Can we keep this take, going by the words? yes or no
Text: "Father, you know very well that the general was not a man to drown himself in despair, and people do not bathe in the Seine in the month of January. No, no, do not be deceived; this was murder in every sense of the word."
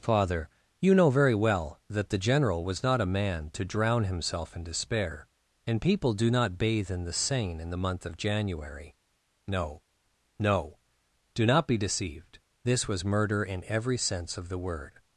yes